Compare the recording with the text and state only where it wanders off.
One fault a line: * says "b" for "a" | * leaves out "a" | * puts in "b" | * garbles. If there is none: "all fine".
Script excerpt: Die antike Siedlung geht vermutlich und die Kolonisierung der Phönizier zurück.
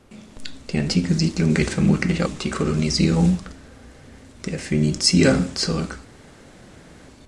all fine